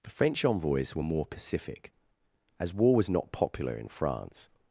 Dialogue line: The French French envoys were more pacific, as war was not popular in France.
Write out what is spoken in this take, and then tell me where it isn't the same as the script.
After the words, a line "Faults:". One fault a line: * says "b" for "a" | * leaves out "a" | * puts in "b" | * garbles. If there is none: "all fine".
The French envoys were more pacific, as war was not popular in France.
Faults:
* leaves out "French"